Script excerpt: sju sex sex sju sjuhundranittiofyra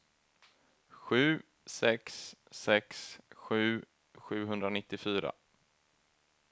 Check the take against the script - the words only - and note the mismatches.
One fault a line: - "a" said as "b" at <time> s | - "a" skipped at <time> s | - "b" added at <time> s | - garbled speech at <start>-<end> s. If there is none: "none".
none